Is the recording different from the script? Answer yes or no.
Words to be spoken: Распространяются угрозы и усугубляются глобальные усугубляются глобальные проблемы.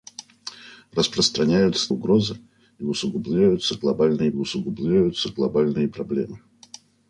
no